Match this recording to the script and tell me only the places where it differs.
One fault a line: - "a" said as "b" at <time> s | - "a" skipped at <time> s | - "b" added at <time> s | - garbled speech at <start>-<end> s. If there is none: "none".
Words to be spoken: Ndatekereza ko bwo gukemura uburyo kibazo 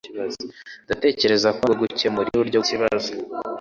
none